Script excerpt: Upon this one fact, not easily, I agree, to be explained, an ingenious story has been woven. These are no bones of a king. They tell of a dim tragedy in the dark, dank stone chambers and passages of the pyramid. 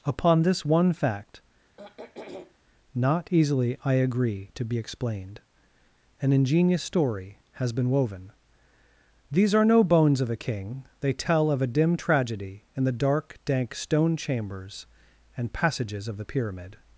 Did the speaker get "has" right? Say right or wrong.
right